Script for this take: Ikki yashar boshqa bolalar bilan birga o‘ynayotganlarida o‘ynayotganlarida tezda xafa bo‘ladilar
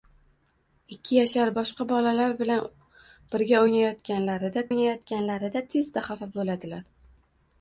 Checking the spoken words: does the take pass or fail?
pass